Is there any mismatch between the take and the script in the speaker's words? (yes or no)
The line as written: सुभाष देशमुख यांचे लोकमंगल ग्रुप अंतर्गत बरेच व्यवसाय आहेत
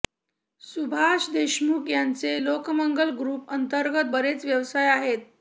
no